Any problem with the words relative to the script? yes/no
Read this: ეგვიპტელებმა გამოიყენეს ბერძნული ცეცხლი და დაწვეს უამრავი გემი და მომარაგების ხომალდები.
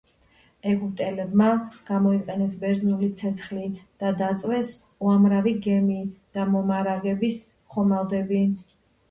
no